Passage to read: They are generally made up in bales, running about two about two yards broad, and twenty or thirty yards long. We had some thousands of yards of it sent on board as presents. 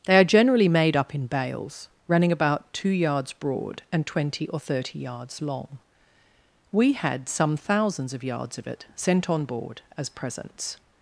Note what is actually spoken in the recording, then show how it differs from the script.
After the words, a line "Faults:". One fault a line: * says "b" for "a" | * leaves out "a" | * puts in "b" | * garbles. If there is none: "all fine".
They are generally made up in bales, running about two yards broad, and twenty or thirty yards long. We had some thousands of yards of it sent on board as presents.
Faults:
* leaves out "about two"